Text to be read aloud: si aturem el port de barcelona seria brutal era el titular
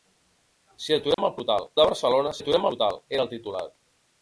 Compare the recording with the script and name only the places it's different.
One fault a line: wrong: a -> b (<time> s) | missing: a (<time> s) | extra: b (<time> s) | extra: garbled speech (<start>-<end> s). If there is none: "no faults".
wrong: port -> brutal (1.4 s)
wrong: seria -> aturem (2.4 s)